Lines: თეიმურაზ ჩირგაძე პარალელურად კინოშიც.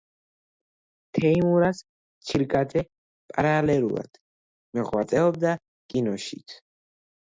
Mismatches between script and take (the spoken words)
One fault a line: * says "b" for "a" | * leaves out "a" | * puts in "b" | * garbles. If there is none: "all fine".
* puts in "მოღვაწეობდა"